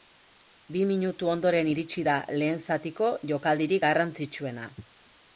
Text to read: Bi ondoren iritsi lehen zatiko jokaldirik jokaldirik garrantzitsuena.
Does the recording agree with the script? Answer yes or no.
no